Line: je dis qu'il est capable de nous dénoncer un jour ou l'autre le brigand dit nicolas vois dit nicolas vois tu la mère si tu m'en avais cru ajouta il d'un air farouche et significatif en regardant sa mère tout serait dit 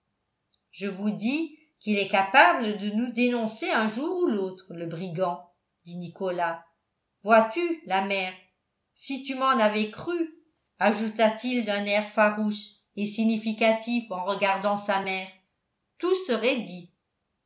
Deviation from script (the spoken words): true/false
true